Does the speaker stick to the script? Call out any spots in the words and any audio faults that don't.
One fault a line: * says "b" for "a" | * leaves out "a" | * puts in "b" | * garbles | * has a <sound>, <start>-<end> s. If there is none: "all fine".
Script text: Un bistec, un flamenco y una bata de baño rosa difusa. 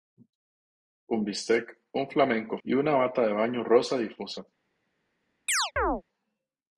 * has a chirp, 5.5-6.0 s